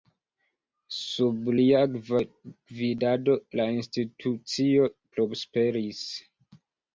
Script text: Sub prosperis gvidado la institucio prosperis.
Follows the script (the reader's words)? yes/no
no